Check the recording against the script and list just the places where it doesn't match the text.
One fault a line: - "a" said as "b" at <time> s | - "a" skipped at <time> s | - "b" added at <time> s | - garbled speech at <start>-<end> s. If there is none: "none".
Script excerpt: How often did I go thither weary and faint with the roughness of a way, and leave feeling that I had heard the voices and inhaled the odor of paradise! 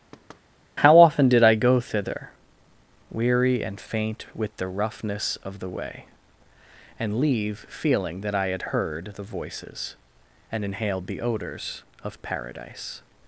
- "a" said as "the" at 5.6 s
- "odor" said as "odors" at 11.2 s